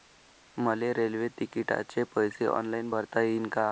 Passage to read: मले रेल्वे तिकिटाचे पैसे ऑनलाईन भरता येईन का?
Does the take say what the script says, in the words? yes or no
yes